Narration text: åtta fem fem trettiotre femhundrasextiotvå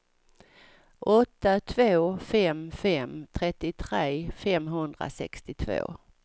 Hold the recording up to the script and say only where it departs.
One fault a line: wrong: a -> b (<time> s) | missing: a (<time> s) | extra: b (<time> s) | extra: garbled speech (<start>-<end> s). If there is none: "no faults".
extra: två (1.6 s)